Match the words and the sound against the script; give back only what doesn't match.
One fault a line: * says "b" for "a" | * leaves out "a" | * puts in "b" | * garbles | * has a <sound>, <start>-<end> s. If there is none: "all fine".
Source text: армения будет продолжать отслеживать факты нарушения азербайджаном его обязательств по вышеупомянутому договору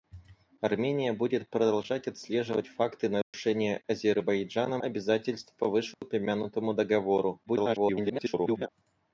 * has a dropout, 3.2-3.3 s
* leaves out "его"
* has a dropout, 5.9-6.0 s
* garbles